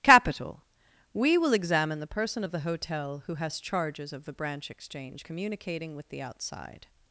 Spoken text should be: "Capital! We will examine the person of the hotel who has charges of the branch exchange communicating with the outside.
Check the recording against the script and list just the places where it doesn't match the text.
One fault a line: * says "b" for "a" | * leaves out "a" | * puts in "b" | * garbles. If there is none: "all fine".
all fine